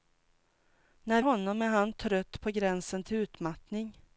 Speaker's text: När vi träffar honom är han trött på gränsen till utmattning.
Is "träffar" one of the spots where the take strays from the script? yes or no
yes